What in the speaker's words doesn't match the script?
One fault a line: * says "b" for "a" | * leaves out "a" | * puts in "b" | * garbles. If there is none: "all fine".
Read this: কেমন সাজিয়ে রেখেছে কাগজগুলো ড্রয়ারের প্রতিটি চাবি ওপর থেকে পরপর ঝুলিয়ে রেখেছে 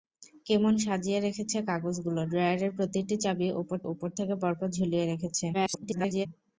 * puts in "ওপর"
* garbles